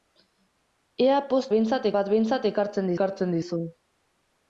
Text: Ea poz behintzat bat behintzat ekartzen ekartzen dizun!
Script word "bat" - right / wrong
right